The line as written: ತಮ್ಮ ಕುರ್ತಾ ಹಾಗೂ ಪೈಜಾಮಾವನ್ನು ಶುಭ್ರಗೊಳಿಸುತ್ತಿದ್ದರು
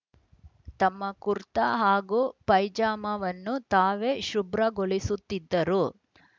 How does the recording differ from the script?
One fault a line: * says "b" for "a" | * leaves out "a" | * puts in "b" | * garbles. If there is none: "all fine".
* puts in "ತಾವೇ"